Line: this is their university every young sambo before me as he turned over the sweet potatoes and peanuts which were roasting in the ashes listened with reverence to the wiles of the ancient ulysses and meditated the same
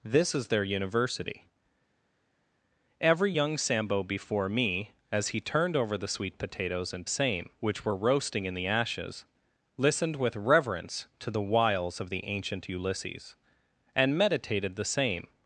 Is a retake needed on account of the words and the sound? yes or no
yes